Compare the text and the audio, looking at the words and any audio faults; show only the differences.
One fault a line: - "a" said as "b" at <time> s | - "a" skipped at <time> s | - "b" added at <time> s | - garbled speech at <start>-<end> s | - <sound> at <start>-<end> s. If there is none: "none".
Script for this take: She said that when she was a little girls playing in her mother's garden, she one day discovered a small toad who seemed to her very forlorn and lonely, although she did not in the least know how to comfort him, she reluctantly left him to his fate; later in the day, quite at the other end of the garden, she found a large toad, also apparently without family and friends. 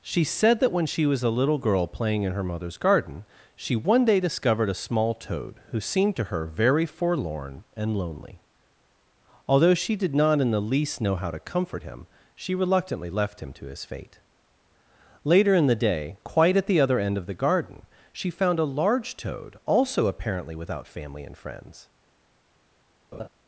- "girls" said as "girl" at 1.6 s
- laugh at 23.1-23.3 s